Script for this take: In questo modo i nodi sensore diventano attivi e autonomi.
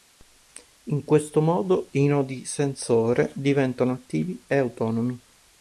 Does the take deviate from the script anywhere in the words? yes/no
no